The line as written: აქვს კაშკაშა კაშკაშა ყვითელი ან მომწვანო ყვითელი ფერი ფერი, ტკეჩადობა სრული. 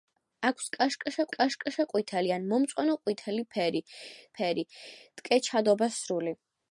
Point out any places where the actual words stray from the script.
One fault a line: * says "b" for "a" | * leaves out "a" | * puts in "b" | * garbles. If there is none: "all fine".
all fine